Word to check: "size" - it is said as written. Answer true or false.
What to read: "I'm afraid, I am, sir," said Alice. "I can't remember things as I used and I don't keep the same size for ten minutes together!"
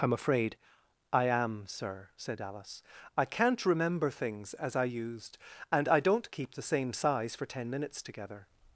true